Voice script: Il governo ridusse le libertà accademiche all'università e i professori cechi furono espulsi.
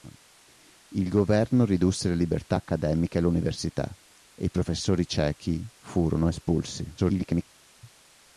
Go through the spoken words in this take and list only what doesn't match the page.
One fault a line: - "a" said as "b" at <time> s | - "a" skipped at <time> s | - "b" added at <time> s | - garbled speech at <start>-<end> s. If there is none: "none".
- garbled speech at 7.0-7.4 s